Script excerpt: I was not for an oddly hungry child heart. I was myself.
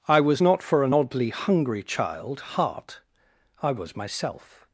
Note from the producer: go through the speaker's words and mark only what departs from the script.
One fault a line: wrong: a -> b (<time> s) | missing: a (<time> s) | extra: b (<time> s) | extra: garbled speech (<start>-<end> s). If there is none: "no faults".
no faults